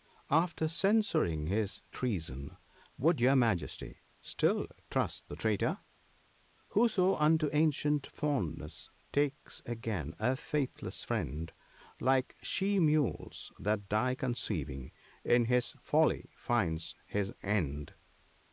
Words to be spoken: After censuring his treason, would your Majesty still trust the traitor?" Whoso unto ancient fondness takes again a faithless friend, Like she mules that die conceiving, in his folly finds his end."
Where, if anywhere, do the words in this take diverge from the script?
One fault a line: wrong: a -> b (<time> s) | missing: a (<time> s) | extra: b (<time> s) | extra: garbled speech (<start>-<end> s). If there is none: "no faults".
no faults